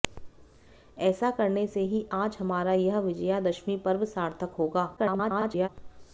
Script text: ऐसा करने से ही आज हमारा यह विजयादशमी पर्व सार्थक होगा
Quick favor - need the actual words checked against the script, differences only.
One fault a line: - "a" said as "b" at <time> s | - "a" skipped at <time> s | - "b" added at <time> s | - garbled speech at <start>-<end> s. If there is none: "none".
- garbled speech at 5.0-5.7 s